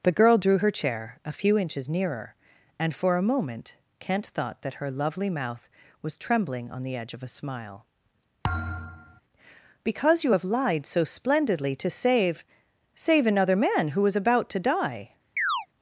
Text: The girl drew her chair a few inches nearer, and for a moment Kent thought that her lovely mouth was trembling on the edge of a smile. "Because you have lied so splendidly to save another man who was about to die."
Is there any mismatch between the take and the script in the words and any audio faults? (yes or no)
yes